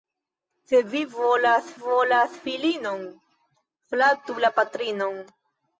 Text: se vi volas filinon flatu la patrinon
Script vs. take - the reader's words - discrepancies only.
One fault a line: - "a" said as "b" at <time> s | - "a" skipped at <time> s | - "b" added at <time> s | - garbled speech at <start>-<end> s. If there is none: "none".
- "volas" added at 1.8 s